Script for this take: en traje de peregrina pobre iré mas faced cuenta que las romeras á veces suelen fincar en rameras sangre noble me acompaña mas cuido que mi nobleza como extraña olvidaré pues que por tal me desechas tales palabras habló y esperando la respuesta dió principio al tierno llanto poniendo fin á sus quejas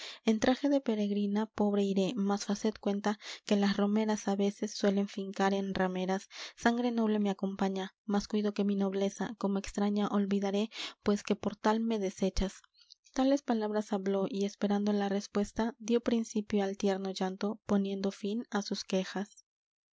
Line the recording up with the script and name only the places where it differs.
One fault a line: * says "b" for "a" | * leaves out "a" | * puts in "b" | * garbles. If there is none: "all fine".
all fine